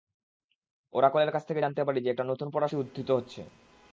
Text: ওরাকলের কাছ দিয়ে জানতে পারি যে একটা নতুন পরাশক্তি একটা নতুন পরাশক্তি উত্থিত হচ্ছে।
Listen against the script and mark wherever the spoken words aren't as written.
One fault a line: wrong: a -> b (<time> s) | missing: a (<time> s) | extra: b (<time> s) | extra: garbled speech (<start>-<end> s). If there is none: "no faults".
wrong: দিয়ে -> থেকে (1.5 s)
missing: একটা নতুন পরাশক্তি (2.8 s)